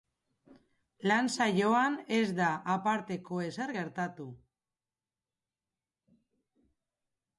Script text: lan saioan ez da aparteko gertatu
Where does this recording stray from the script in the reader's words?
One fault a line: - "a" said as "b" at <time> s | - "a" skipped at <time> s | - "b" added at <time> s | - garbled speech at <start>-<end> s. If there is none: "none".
- "ezer" added at 3.5 s